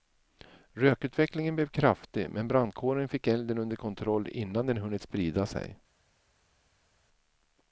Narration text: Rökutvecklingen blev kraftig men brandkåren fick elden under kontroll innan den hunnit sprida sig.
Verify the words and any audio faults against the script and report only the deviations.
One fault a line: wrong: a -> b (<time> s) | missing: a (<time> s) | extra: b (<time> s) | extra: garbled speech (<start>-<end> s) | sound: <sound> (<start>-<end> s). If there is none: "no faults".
no faults